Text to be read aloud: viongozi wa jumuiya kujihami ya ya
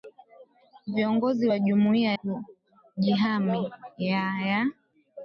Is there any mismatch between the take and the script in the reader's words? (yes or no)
no